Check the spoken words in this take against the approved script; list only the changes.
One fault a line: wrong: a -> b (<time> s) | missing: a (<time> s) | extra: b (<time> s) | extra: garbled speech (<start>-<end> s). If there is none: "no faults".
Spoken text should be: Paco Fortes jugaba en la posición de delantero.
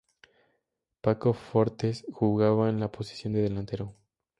no faults